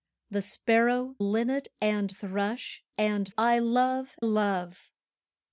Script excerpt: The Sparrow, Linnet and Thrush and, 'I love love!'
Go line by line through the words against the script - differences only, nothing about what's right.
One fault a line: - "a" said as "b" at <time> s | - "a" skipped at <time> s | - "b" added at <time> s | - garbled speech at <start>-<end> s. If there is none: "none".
none